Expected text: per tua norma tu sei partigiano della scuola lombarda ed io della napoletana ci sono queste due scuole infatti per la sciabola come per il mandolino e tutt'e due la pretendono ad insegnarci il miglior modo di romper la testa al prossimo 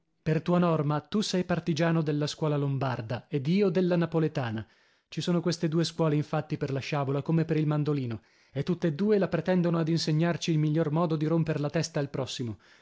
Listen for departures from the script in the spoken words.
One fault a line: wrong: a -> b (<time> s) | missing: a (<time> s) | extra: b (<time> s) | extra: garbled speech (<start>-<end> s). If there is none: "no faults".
no faults